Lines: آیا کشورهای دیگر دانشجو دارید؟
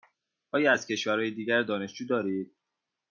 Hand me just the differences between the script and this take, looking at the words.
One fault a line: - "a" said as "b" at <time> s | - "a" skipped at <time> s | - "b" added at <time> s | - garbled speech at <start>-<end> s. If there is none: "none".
- "از" added at 0.7 s